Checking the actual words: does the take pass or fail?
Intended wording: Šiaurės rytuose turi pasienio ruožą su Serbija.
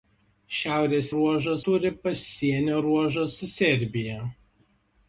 fail